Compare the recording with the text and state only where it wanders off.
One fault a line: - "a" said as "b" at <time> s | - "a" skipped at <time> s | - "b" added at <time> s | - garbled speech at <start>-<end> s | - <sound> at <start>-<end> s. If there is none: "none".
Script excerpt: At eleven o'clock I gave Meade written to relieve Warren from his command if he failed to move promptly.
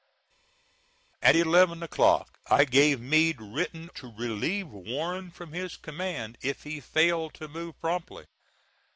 none